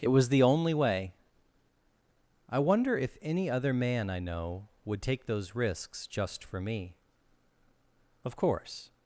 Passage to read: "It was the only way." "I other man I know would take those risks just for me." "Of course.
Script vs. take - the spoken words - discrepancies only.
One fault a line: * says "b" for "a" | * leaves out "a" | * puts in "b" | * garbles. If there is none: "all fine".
* puts in "wonder if any"